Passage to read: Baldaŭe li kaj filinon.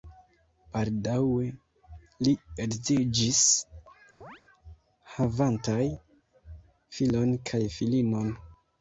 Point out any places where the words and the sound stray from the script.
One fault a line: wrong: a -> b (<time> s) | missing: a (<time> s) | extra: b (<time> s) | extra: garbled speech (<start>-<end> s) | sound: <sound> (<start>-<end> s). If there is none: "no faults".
extra: edziĝis havantaj filon (2.6 s)
sound: chirp (4.2-4.4 s)